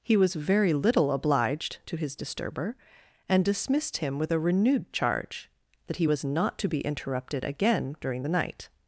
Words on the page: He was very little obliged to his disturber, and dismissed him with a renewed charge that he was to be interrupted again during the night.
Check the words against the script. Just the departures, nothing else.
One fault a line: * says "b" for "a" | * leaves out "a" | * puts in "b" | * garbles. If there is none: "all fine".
* puts in "not"